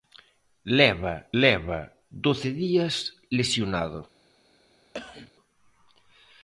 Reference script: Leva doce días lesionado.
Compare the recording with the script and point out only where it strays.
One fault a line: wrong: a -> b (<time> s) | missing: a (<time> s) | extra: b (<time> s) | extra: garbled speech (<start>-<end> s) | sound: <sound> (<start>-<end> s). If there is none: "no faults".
extra: leva (1.4 s)
sound: cough (4.9-5.3 s)